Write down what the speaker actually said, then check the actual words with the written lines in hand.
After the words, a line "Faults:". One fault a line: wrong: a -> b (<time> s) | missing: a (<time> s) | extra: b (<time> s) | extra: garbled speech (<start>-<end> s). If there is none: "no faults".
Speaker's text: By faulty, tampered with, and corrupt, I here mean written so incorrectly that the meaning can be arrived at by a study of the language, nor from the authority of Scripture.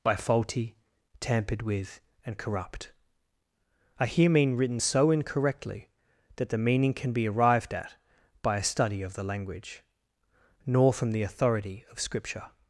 By faulty, tampered with, and corrupt, I here mean written so incorrectly that the meaning can be arrived at by a study of the language, nor from the authority of Scripture.
Faults:
no faults